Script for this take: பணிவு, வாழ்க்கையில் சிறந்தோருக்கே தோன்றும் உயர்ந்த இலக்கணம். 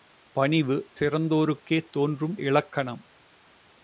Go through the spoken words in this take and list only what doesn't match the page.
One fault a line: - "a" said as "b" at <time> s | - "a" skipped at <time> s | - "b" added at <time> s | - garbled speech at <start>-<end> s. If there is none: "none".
- "வாழ்க்கையில்" skipped at 0.9 s
- "உயர்ந்த" skipped at 2.4 s